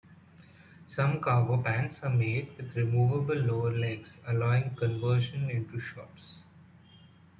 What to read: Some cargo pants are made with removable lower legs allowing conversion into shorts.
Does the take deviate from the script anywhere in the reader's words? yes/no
no